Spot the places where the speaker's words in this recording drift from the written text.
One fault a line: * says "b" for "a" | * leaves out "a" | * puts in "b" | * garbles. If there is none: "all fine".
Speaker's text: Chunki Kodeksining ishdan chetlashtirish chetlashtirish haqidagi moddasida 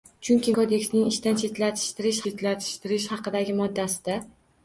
all fine